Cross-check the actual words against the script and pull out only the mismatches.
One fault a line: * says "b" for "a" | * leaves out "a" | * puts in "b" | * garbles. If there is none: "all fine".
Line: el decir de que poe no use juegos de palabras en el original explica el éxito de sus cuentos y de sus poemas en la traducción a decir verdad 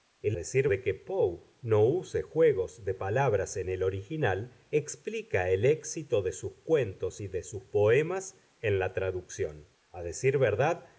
all fine